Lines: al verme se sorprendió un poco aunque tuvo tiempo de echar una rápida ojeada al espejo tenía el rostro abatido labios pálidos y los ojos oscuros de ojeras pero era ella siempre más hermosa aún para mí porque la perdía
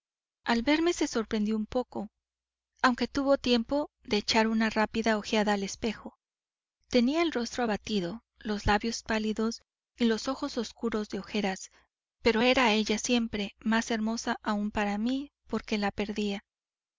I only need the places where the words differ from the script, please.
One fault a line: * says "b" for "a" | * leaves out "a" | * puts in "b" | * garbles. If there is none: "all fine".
* puts in "los"